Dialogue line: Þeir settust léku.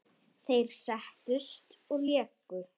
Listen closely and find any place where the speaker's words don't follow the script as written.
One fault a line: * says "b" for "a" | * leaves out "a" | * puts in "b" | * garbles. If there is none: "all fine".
* puts in "og"